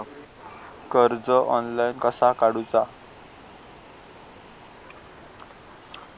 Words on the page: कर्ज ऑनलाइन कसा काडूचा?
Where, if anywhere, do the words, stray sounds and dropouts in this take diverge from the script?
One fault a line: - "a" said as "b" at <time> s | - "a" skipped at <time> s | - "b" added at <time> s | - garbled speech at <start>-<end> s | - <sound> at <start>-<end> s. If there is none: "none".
none